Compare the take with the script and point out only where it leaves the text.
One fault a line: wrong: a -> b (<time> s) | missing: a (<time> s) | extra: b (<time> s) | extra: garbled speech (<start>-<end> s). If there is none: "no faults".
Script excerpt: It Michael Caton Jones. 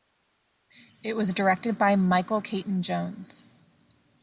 extra: was directed by (1.1 s)